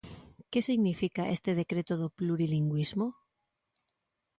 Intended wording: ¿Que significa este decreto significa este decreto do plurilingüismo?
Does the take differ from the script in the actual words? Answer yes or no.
yes